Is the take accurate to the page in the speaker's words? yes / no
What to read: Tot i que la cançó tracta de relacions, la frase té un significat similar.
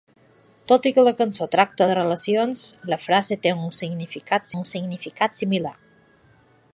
no